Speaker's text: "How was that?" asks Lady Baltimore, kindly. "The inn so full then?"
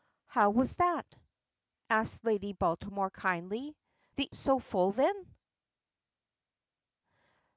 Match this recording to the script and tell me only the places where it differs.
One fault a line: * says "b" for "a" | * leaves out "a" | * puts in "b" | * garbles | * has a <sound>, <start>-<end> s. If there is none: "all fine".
* leaves out "inn"